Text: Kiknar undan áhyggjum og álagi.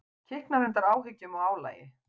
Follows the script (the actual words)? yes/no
yes